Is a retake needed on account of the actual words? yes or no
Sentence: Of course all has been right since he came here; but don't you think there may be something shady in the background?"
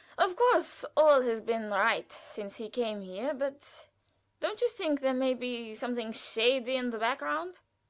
no